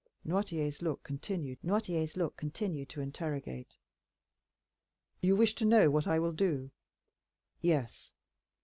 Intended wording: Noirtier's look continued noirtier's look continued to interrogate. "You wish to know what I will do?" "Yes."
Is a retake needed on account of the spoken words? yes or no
no